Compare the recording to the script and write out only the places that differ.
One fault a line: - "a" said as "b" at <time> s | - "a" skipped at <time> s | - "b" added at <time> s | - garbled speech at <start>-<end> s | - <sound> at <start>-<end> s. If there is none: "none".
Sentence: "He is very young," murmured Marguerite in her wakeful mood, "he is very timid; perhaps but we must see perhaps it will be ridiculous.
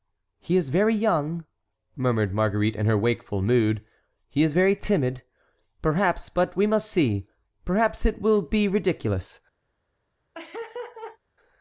- laugh at 10.3-11.2 s